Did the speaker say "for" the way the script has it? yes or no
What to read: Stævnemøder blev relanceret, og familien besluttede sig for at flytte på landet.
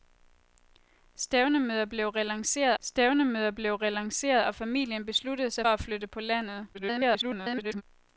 no